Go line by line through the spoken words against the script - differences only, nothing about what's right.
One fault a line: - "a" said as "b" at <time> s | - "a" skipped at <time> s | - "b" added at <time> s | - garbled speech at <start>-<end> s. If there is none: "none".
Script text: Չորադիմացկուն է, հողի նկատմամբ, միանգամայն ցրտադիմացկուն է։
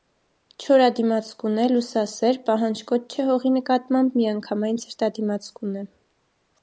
- "լուսասեր պահանջկոտ չէ" added at 1.7 s